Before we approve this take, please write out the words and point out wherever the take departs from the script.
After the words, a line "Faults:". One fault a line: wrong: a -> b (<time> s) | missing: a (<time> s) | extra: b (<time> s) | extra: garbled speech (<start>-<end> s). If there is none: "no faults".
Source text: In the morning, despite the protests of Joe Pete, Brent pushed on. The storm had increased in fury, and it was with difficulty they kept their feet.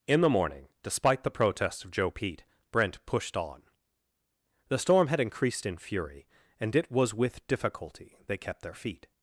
In the morning, despite the protests of Joe Pete, Brent pushed on. The storm had increased in fury, and it was with difficulty they kept their feet.
Faults:
no faults